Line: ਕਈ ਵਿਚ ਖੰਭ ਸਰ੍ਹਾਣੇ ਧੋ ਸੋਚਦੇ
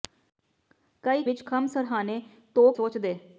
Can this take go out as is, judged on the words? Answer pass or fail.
pass